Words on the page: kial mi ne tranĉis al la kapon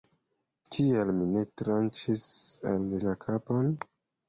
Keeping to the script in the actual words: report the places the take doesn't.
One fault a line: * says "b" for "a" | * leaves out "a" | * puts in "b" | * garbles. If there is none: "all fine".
all fine